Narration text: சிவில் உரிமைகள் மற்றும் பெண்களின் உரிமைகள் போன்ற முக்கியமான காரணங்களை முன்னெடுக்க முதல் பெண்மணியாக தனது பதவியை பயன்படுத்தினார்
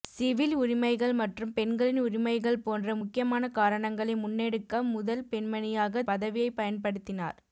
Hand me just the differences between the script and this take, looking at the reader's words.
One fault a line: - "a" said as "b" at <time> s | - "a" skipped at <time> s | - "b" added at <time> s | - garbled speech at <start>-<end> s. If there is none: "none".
- "தனது" skipped at 6.0 s